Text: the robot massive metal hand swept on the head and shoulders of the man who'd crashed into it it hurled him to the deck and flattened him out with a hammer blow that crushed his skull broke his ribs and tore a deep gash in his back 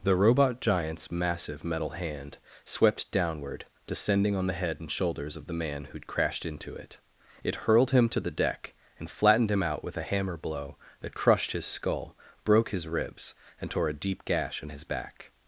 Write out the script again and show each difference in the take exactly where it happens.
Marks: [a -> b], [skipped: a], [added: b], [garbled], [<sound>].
the robot [added: giant's] massive metal hand swept [added: downward descending] on the head and shoulders of the man who'd crashed into it it hurled him to the deck and flattened him out with a hammer blow that crushed his skull broke his ribs and tore a deep gash in his back